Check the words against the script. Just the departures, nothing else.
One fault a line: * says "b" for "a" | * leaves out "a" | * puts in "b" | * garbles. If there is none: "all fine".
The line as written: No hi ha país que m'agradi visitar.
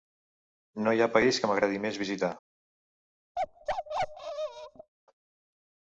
* puts in "més"